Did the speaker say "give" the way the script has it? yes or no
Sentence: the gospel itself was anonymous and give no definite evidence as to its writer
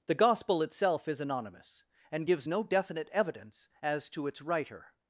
no